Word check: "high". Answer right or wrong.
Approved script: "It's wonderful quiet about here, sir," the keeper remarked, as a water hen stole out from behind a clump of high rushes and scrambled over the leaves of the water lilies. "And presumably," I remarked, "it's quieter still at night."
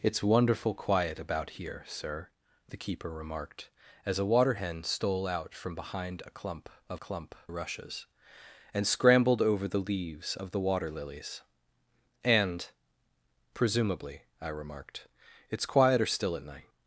wrong